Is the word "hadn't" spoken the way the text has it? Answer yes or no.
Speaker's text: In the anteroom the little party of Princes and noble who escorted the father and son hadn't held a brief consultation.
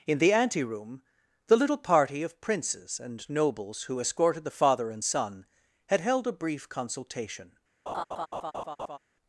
no